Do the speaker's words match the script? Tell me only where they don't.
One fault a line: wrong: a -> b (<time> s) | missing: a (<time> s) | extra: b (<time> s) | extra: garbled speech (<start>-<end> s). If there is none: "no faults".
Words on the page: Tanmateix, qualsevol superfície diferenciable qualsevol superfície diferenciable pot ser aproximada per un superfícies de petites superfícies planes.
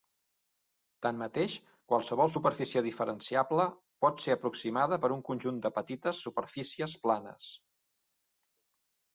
missing: qualsevol superfície diferenciable (3.7 s)
wrong: superfícies -> conjunt (5.3 s)